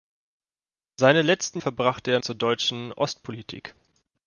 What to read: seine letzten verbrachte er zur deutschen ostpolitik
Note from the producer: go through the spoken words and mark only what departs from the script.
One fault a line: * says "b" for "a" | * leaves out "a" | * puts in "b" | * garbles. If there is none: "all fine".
all fine